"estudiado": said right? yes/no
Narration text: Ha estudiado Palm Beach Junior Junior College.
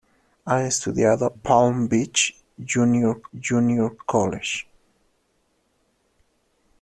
yes